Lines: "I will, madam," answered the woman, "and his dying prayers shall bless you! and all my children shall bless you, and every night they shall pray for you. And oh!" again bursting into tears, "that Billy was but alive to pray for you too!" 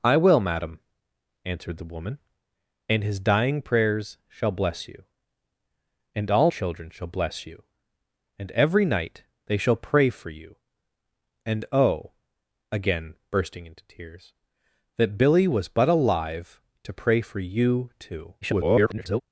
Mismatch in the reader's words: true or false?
true